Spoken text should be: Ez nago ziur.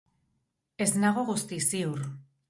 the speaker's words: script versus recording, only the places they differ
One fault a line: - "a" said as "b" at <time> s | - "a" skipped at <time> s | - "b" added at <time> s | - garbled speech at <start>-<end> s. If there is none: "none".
- "guztiz" added at 1.3 s